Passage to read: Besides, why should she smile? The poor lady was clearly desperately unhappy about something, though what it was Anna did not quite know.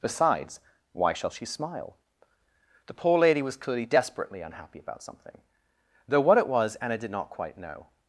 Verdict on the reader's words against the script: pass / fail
fail